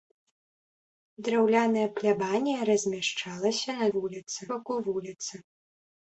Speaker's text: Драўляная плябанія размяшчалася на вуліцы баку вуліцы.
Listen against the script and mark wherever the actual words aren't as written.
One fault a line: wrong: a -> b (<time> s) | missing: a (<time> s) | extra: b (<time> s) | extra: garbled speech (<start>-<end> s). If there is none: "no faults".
no faults